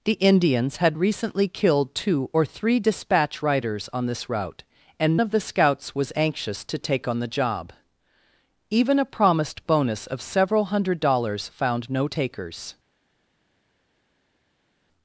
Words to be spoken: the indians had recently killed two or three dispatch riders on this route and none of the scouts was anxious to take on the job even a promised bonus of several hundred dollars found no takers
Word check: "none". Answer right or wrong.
wrong